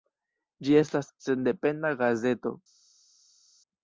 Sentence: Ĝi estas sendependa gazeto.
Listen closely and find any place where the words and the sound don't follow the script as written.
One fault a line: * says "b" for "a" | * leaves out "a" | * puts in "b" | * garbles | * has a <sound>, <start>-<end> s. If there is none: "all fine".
all fine